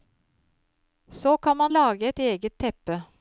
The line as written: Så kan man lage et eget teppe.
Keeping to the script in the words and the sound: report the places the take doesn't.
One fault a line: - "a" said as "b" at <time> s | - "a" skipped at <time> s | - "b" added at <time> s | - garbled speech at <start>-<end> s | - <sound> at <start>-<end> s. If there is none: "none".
none